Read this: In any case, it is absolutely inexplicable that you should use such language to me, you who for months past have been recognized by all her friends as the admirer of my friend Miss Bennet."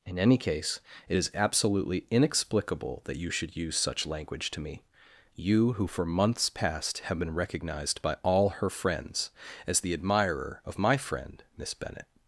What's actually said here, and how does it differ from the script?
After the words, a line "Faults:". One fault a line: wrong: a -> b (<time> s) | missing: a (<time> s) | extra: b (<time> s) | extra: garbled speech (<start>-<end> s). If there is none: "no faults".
In any case, it is absolutely inexplicable that you should use such language to me, you who for months past have been recognized by all her friends as the admirer of my friend Miss Bennet."
Faults:
no faults